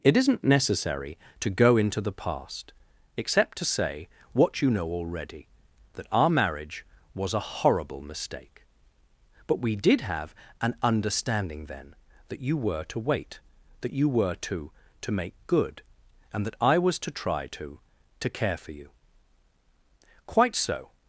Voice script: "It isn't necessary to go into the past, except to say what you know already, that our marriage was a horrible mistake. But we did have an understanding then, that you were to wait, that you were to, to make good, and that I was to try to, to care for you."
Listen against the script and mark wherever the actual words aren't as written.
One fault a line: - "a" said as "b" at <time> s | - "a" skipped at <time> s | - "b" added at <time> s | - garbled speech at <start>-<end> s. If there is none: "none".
- "Quite so" added at 20.3 s